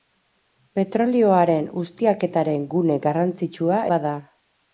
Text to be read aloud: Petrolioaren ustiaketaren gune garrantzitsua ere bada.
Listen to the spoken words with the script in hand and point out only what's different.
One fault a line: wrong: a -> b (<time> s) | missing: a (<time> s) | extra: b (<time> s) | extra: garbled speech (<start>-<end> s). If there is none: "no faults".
missing: ere (3.9 s)